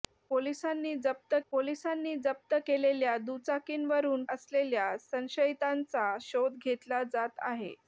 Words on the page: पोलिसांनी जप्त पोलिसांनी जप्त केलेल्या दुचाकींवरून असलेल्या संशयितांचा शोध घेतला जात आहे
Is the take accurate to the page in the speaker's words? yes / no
yes